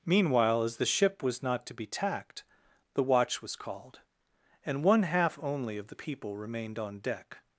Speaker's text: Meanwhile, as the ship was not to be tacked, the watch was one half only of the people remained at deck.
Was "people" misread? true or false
false